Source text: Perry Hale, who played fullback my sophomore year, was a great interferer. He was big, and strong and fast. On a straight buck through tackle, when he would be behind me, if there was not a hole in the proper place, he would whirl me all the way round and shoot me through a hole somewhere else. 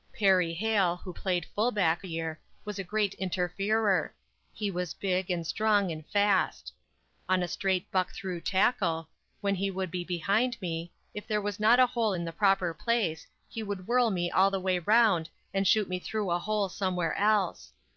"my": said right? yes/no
no